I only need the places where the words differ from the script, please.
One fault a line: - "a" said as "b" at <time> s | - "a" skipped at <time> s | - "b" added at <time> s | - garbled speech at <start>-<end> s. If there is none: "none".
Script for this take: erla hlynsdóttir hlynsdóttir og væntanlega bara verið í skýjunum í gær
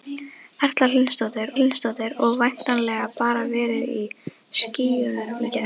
none